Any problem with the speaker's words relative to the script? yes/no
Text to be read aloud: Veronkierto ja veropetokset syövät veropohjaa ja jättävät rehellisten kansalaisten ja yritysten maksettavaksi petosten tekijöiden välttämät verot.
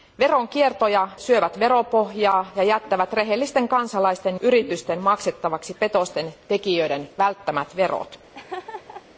yes